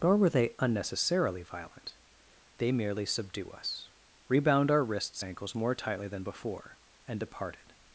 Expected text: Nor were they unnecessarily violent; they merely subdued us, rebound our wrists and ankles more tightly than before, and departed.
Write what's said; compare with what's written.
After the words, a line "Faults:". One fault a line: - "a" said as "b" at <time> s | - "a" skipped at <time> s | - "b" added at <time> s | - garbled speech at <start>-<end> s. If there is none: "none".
Nor were they unnecessarily violent; they merely subdue us, rebound our wrists ankles more tightly than before, and departed.
Faults:
- "subdued" said as "subdue" at 3.0 s
- "and" skipped at 5.2 s